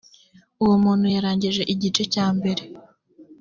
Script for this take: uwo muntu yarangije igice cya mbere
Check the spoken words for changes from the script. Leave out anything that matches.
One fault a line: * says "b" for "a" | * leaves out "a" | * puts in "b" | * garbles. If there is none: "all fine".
all fine